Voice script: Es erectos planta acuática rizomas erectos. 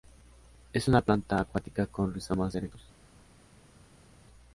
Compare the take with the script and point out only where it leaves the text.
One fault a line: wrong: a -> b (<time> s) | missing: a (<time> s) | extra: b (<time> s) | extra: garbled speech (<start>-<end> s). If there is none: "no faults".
wrong: erectos -> una (0.9 s)
extra: con (1.9 s)